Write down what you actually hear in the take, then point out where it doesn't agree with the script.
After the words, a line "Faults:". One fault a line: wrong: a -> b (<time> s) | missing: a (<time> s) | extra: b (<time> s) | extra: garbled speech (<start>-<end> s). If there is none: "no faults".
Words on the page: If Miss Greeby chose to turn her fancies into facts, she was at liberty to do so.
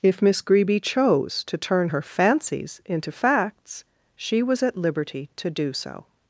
If Miss Greeby chose to turn her fancies into facts, she was at liberty to do so.
Faults:
no faults